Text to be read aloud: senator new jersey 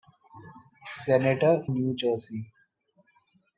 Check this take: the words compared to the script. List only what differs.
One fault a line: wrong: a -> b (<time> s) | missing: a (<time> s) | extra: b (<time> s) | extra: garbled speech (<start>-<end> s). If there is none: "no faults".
no faults